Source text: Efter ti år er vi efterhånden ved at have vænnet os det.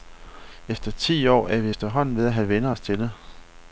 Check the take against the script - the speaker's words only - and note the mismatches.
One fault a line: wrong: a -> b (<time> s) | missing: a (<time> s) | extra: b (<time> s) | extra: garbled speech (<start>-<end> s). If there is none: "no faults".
extra: til (2.8 s)